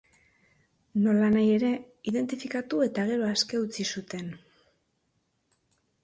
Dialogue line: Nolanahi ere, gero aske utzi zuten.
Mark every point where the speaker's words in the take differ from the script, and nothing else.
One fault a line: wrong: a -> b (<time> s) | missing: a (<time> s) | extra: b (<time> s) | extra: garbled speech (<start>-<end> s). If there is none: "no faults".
extra: identifikatu eta (2.1 s)